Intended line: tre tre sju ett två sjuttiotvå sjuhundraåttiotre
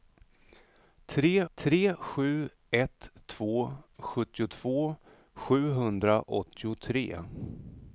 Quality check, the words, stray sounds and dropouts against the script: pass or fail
pass